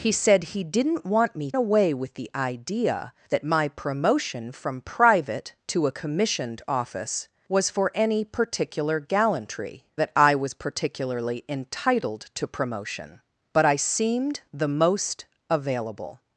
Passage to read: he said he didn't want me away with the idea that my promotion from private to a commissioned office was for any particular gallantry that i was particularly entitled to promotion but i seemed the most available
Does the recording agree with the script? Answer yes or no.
yes